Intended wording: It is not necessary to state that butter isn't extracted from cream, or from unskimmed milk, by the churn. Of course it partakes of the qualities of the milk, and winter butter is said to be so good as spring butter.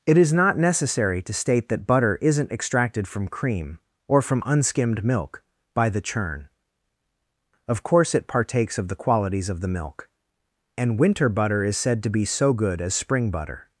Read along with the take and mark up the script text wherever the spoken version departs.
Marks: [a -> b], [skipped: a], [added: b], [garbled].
It is not necessary to state that butter isn't extracted from cream, or from unskimmed milk, by the churn. Of course it partakes of the qualities of the milk, and winter butter is said to be so good as spring butter.